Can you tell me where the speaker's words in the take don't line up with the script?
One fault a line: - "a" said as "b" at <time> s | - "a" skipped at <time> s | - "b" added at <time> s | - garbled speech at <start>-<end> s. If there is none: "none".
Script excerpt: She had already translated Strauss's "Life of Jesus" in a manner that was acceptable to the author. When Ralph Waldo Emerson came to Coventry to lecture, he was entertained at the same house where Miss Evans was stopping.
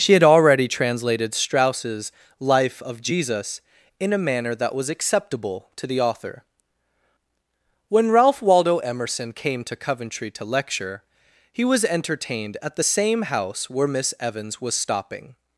none